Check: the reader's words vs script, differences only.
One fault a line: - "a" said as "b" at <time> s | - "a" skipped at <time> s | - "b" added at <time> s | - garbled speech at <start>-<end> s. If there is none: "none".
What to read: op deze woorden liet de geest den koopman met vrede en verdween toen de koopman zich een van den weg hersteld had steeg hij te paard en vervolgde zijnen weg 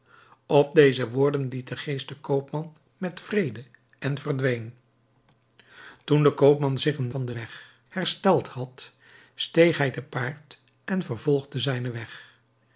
none